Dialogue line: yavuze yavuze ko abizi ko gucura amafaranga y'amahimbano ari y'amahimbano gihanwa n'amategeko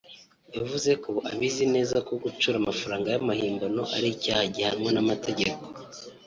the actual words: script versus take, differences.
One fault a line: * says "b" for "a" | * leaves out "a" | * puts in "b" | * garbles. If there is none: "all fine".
* leaves out "yavuze"
* puts in "neza"
* says "icyaha" for "y'amahimbano"